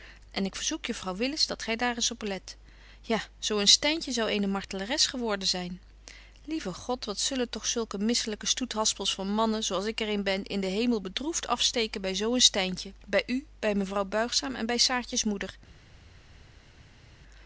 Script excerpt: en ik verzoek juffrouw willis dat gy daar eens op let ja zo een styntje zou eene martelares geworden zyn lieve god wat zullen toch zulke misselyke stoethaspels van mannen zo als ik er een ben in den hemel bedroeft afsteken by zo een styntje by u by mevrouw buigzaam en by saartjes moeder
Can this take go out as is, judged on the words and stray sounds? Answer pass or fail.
pass